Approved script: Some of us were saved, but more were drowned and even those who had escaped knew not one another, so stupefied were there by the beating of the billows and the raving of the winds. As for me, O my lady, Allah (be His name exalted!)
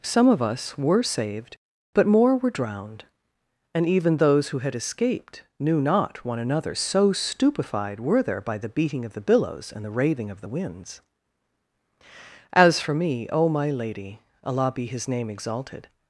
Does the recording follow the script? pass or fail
pass